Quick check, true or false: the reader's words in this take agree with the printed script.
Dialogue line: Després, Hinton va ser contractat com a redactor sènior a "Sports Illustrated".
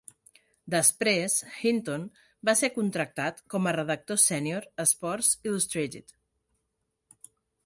true